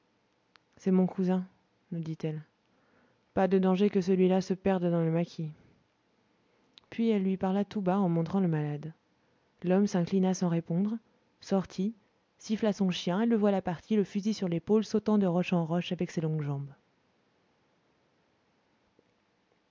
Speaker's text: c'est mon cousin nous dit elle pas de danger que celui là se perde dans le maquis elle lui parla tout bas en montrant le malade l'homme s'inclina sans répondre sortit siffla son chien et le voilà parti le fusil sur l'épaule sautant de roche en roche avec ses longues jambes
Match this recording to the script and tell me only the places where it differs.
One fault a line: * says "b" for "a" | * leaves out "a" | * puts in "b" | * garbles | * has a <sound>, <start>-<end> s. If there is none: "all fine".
* puts in "puis"